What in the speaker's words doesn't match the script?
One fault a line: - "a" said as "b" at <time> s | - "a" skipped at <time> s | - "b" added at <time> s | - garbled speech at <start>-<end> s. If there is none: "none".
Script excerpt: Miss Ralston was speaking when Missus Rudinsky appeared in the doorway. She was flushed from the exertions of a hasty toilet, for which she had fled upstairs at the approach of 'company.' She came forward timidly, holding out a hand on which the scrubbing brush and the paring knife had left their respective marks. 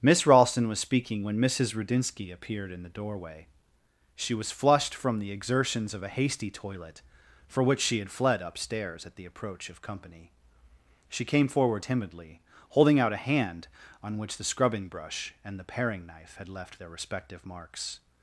none